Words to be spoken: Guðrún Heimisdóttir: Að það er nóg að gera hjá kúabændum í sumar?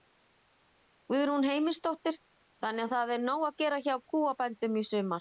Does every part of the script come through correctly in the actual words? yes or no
no